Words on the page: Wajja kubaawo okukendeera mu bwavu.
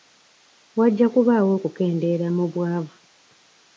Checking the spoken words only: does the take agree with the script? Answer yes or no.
yes